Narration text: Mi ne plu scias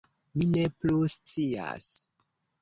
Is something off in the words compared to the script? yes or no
no